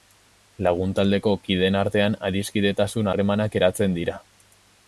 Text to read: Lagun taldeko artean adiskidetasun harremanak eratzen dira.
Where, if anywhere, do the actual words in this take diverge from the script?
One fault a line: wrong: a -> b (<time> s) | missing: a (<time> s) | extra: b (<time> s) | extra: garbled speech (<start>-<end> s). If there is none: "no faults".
extra: kideen (1.4 s)